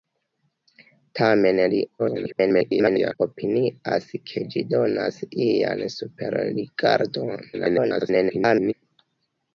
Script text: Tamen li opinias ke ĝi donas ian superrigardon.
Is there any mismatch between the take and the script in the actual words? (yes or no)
yes